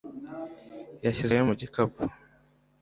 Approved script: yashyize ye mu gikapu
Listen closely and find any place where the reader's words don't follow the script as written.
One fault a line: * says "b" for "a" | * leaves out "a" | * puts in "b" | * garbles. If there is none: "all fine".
all fine